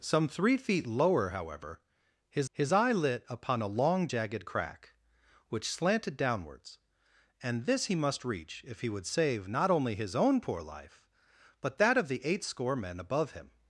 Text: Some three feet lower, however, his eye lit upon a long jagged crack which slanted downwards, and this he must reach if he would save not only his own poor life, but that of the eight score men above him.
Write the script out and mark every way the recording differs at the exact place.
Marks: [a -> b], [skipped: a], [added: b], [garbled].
Some three feet lower, however, his [added: his] eye lit upon a long jagged crack which slanted downwards, and this he must reach if he would save not only his own poor life, but that of the eight score men above him.